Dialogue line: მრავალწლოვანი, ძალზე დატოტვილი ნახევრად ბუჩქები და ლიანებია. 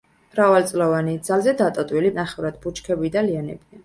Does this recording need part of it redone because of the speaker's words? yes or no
no